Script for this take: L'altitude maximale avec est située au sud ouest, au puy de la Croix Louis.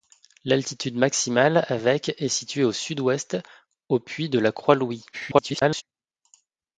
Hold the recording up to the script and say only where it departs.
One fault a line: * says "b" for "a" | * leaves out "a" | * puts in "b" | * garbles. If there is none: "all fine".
* garbles